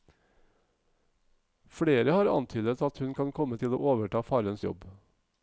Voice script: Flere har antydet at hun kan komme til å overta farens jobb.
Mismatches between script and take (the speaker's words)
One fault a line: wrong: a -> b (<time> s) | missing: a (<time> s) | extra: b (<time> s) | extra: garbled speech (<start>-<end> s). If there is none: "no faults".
no faults